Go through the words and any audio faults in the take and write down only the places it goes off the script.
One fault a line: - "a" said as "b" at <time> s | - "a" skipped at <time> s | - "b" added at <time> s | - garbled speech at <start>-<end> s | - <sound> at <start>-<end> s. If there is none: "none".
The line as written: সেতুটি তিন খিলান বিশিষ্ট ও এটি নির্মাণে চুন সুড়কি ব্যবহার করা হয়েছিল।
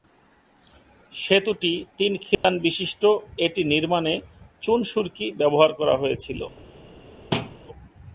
- dropout at 2.3-2.4 s
- "ও" skipped at 3.0 s
- thud at 7.3-7.6 s